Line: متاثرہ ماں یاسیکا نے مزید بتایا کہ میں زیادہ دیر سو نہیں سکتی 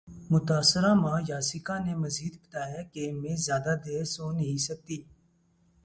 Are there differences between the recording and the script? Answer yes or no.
no